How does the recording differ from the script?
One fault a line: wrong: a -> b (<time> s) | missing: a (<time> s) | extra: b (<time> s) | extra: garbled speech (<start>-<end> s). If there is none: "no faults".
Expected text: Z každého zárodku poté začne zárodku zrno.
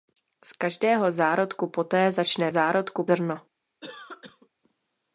no faults